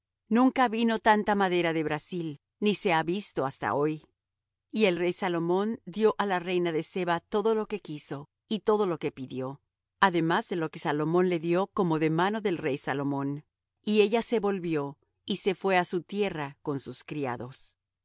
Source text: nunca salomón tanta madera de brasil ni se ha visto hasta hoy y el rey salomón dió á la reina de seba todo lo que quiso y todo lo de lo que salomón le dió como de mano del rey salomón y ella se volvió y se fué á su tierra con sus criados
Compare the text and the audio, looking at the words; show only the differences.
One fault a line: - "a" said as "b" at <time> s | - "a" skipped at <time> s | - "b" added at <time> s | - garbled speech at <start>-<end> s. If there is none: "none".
- "salomón" said as "vino" at 0.7 s
- "que pidió además" added at 9.0 s